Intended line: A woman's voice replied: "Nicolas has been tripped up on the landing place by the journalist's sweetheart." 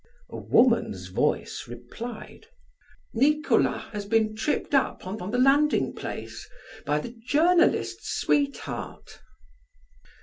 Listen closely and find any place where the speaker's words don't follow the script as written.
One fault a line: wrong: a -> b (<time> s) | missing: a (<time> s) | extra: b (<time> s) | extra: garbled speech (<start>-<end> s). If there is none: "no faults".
extra: on (5.2 s)